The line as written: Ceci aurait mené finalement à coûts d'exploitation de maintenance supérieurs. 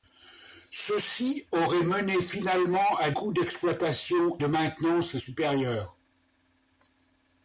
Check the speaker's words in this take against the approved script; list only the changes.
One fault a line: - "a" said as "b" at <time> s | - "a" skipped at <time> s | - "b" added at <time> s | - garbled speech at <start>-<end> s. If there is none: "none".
none